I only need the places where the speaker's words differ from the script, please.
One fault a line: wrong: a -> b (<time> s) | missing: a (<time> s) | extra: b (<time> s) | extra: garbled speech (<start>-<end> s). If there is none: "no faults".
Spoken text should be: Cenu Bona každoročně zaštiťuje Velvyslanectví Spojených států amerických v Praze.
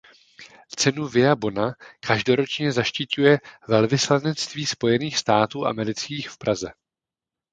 extra: Via (1.1 s)